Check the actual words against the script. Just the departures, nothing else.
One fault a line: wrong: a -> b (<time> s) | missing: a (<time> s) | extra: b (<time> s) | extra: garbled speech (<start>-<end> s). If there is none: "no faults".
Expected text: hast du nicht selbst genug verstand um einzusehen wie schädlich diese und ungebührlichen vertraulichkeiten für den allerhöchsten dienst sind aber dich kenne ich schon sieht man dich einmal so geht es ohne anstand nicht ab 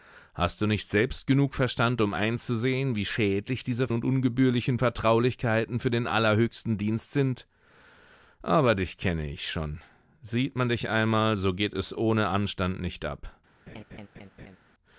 no faults